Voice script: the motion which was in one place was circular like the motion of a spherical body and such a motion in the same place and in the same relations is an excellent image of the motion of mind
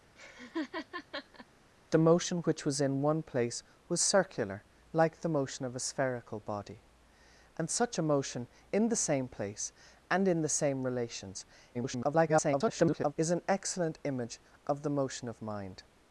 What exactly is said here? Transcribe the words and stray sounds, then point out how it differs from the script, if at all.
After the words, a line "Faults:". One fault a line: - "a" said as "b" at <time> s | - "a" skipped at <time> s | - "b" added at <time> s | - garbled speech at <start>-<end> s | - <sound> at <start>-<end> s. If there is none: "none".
the motion which was in one place was circular like the motion of a spherical body and such a motion in the same place and in the same relations [garbled] is an excellent image of the motion of mind
Faults:
- laugh at 0.2-1.5 s
- garbled speech at 11.7-13.1 s